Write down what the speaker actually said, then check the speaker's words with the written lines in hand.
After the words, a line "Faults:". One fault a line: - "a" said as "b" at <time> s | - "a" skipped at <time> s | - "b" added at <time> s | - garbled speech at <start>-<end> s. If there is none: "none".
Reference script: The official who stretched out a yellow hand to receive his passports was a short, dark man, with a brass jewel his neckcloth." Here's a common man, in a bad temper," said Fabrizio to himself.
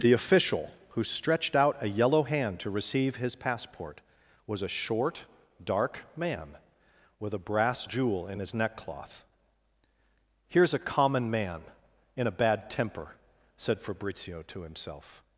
The official who stretched out a yellow hand to receive his passport was a short, dark man, with a brass jewel in his neckcloth." Here's a common man, in a bad temper," said Fabrizio to himself.
Faults:
- "passports" said as "passport" at 3.4 s
- "in" added at 8.3 s